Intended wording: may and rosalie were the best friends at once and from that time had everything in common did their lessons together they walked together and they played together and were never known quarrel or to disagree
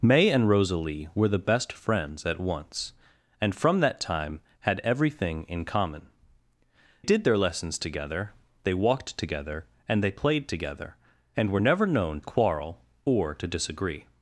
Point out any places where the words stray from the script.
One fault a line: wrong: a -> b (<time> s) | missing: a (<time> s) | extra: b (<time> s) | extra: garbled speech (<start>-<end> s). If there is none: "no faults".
no faults